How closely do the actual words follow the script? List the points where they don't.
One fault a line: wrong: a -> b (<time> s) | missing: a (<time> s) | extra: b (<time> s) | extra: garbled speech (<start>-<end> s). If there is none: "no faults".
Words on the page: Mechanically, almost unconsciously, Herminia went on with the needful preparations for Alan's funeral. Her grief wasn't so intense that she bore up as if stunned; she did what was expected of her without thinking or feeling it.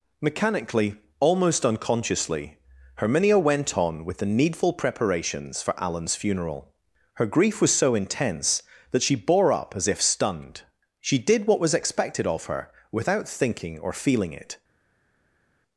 wrong: wasn't -> was (7.6 s)